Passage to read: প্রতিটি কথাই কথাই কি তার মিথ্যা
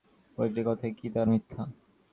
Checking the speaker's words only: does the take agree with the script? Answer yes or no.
no